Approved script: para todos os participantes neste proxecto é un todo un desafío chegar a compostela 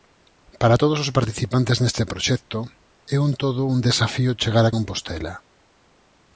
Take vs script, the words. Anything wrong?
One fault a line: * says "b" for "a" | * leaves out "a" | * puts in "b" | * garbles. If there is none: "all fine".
all fine